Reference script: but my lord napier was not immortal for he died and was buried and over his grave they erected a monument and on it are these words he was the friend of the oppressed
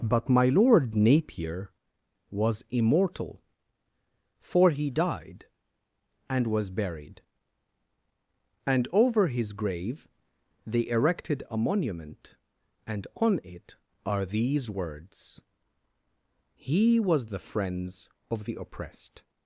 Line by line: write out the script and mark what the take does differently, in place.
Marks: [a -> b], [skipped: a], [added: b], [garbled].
but my lord napier was [skipped: not] immortal for he died and was buried and over his grave they erected a monument and on it are these words he was the [friend -> friends] of the oppressed